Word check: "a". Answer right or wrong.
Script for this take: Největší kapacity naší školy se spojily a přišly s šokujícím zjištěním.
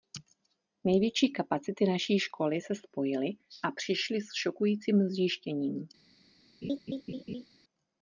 right